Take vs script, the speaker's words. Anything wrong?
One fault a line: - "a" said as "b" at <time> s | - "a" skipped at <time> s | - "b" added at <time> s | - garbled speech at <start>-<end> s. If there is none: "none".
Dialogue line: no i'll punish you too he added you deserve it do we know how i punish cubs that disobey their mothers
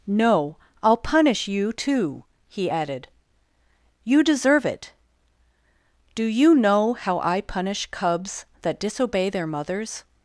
- "we" said as "you" at 6.2 s